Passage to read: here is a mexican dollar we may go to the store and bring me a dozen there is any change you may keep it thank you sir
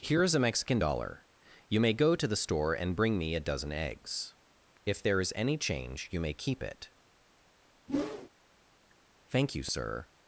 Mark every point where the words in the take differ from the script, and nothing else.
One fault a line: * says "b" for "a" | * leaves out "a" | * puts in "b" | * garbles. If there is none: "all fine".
* says "you" for "we"
* puts in "eggs if"